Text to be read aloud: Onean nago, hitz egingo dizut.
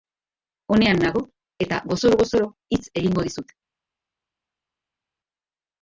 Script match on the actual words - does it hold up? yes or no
no